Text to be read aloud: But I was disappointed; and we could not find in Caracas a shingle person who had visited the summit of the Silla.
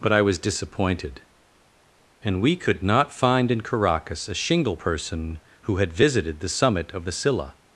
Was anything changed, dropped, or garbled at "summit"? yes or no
no